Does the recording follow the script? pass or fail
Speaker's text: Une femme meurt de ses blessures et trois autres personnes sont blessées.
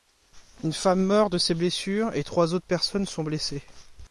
pass